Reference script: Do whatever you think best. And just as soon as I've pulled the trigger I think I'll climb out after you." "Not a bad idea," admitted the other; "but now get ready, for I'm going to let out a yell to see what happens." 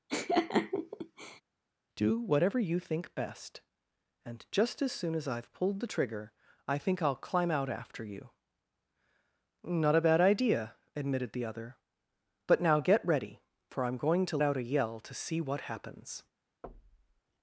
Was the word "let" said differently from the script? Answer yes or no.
yes